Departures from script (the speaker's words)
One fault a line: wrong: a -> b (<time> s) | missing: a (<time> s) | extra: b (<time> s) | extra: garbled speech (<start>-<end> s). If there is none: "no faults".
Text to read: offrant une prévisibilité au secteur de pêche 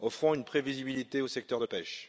no faults